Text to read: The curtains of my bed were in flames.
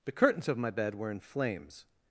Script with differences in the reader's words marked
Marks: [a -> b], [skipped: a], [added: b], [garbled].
The curtains of my bed were in flames.